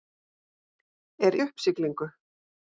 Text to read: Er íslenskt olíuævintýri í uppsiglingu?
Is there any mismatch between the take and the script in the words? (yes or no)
yes